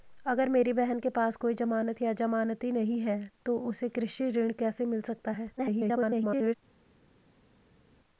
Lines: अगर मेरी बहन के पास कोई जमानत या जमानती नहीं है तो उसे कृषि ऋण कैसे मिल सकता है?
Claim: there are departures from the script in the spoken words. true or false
true